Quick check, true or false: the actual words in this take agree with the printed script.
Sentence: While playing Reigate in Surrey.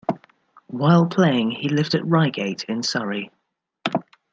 false